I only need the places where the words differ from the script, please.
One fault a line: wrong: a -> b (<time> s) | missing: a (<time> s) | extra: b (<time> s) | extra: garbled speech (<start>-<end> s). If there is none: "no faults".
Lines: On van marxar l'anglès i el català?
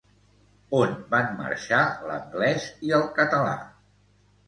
no faults